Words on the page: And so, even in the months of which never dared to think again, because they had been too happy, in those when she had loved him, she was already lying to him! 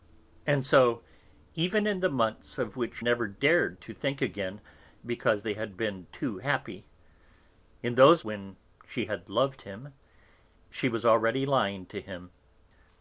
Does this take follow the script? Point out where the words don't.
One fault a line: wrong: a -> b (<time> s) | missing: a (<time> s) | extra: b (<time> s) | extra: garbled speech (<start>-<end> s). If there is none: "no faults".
no faults